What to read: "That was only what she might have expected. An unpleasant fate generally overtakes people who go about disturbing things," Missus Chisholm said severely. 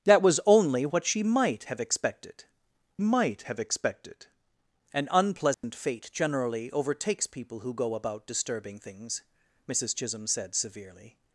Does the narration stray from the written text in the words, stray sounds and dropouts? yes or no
yes